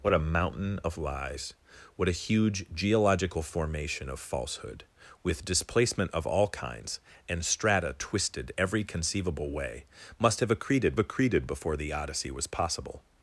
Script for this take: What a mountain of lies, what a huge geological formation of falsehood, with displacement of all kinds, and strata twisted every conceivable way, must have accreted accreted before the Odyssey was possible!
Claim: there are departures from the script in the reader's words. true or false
false